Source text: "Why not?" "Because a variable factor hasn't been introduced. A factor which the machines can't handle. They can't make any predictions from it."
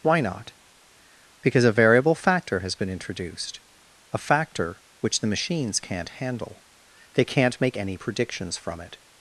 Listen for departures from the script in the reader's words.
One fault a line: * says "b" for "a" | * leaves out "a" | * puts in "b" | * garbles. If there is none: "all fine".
* says "has" for "hasn't"